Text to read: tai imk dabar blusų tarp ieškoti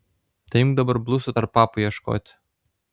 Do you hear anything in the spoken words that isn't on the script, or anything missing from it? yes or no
yes